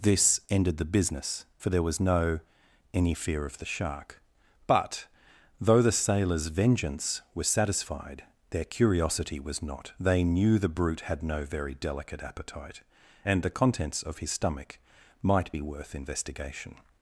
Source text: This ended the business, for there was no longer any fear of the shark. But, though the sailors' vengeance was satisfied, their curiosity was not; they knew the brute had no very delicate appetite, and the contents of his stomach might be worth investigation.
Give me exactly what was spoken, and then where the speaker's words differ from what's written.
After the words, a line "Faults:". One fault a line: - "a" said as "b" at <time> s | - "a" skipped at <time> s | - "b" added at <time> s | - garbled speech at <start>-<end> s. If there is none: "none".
This ended the business, for there was no any fear of the shark. But, though the sailors' vengeance was satisfied, their curiosity was not; they knew the brute had no very delicate appetite, and the contents of his stomach might be worth investigation.
Faults:
- "longer" skipped at 2.4 s